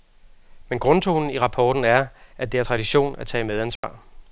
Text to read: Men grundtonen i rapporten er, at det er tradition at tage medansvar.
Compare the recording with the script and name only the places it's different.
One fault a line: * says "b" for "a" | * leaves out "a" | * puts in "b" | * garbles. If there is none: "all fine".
all fine